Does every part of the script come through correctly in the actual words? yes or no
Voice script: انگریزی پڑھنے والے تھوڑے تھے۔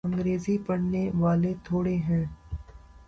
no